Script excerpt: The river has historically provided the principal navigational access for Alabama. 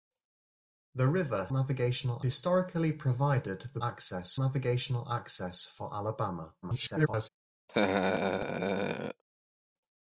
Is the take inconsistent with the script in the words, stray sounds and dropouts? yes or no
yes